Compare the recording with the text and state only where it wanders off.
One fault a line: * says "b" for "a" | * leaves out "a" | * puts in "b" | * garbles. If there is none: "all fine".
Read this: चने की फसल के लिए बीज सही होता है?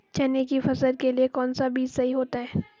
* puts in "कौनसा"